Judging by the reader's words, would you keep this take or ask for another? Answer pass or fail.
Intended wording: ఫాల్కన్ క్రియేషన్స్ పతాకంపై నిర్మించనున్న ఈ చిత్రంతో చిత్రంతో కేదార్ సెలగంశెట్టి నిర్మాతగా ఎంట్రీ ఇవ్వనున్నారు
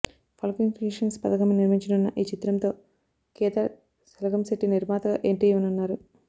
fail